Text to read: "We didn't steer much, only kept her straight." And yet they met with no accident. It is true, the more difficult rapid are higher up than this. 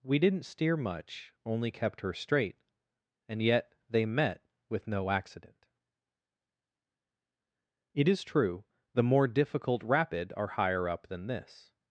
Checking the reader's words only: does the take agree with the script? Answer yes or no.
yes